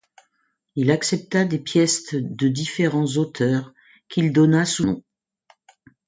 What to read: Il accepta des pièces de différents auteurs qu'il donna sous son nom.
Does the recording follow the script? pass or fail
fail